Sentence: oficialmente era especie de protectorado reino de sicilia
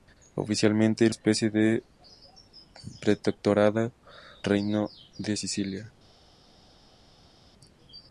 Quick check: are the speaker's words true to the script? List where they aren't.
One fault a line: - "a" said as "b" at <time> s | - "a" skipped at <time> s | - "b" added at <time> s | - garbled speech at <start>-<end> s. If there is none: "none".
none